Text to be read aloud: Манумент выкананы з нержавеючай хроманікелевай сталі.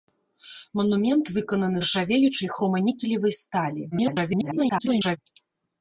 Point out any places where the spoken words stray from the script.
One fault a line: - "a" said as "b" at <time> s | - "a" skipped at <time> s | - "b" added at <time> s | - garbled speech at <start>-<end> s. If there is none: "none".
- "з" skipped at 1.8 s
- garbled speech at 3.9-5.2 s